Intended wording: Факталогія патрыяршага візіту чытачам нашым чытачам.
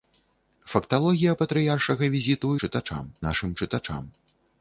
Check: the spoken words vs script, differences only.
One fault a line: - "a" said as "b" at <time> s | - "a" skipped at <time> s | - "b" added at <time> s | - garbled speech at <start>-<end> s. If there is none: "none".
none